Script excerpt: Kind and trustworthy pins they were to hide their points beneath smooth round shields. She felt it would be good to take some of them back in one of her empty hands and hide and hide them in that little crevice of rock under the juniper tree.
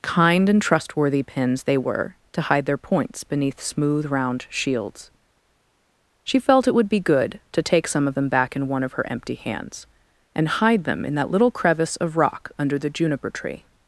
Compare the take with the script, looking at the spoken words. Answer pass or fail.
fail